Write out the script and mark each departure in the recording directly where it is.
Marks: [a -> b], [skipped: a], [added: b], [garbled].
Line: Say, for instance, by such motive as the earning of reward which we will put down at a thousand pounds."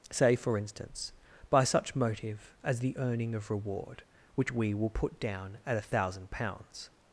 Say, for instance, by such motive as the earning of reward which we will put down at a thousand pounds."